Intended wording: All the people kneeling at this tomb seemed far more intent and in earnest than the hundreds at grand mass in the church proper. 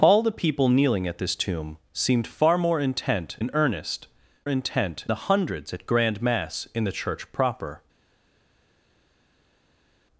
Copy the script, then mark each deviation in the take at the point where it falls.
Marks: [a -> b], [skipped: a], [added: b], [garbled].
All the people kneeling at this tomb seemed far more intent [skipped: and] in earnest [than -> intent] the hundreds at grand mass in the church proper.